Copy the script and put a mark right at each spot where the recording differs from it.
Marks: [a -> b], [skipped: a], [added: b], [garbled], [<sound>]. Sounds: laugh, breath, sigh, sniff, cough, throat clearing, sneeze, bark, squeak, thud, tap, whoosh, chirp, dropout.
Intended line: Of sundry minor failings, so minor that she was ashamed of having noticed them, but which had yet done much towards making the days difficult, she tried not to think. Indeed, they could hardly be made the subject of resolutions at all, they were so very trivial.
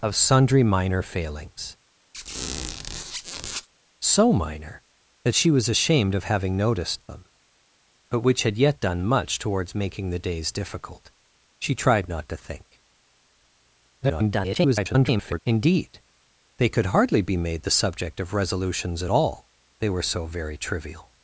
Of sundry minor failings, [squeak] so minor that she was ashamed of having noticed them, but which had yet done much towards making the days difficult, she tried not to think. [garbled] Indeed, they could hardly be made the subject of resolutions at all, they were so very trivial.